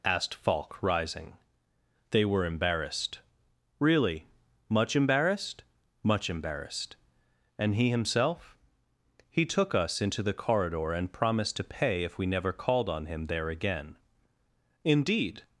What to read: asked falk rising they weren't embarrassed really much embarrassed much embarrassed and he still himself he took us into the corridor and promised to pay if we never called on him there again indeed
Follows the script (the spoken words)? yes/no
no